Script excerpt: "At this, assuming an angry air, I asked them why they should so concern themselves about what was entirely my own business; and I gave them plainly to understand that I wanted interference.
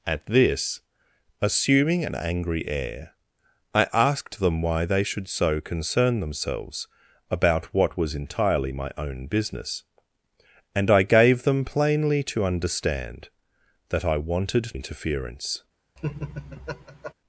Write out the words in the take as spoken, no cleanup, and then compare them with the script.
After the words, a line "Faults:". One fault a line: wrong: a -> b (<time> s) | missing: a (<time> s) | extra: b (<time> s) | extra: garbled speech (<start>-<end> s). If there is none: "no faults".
"At this, assuming an angry air, I asked them why they should so concern themselves about what was entirely my own business; and I gave them plainly to understand that I wanted interference.
Faults:
no faults